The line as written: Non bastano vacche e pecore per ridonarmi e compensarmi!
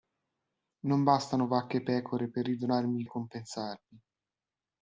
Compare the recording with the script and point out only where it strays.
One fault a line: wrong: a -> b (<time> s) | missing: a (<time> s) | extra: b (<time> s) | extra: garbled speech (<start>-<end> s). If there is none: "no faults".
no faults